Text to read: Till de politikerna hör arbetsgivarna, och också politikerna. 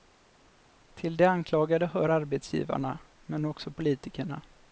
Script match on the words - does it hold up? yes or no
no